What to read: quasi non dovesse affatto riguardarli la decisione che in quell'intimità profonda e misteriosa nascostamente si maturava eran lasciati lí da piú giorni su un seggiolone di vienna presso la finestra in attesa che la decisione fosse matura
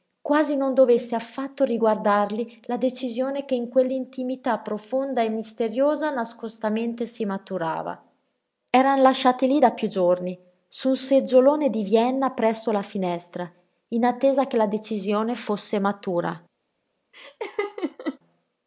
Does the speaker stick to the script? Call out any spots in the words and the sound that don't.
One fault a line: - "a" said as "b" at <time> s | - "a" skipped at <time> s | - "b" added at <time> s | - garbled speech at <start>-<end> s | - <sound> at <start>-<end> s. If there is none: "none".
- laugh at 17.1-18.2 s